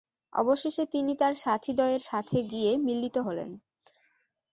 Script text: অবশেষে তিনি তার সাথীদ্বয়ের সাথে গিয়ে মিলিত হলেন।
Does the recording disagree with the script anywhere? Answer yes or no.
no